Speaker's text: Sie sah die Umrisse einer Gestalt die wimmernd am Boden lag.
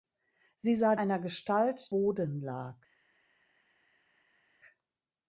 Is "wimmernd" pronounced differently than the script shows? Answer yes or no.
yes